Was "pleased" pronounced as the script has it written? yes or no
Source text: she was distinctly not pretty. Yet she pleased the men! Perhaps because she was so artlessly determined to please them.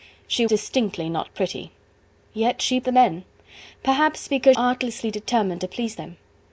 no